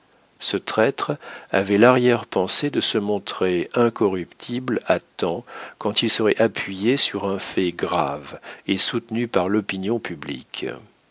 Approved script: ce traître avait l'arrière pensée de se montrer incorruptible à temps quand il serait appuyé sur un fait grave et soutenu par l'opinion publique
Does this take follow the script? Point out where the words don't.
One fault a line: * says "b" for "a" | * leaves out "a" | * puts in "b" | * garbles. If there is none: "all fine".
all fine